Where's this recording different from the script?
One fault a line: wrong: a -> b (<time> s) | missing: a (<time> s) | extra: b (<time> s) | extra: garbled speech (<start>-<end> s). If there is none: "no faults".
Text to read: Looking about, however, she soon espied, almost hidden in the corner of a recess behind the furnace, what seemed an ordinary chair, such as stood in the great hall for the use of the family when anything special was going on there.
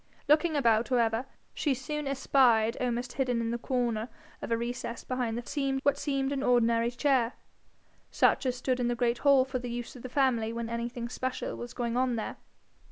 wrong: furnace -> seemed (5.5 s)